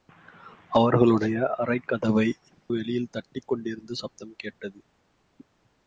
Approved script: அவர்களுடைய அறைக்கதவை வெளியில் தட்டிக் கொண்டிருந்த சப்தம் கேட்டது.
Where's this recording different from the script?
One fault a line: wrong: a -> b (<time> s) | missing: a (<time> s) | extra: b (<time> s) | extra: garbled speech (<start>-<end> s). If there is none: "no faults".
no faults